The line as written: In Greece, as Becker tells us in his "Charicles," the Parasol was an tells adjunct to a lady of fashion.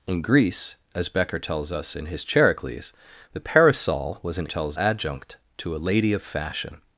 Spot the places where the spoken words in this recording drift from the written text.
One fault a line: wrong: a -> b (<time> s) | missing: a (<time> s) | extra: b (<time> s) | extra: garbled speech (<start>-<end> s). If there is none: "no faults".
no faults